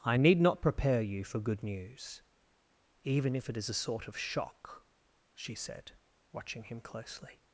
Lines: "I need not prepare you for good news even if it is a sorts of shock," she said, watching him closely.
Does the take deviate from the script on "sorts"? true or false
true